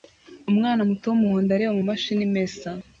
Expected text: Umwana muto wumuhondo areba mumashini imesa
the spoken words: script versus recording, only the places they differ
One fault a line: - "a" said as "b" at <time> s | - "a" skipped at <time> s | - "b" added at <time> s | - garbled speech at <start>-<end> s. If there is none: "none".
none